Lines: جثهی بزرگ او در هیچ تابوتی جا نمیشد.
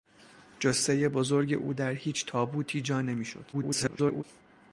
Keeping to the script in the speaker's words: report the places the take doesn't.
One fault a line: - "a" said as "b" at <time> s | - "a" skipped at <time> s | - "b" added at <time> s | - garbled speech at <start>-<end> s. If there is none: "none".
- garbled speech at 3.5-4.2 s